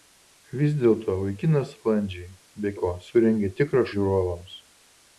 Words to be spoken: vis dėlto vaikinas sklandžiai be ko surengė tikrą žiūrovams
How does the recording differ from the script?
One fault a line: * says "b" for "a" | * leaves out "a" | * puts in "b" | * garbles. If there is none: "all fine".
all fine